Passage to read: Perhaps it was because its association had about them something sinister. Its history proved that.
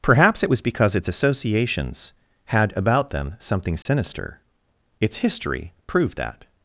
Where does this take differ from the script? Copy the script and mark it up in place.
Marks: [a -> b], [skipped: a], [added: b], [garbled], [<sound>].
Perhaps it was because its [association -> associations] had about them something sinister. [dropout] Its history proved that.